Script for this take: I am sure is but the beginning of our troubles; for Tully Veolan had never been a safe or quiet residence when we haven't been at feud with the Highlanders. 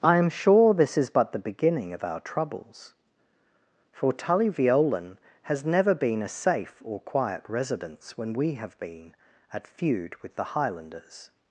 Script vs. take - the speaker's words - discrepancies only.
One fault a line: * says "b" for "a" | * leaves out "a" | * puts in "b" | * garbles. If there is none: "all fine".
* puts in "this"
* says "has" for "had"
* says "have" for "haven't"